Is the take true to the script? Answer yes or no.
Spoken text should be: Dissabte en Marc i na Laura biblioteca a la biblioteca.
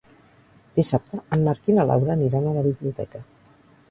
no